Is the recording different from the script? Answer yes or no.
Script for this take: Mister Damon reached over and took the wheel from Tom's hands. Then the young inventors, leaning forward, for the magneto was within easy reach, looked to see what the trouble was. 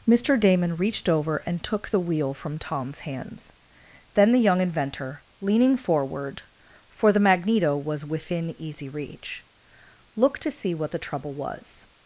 yes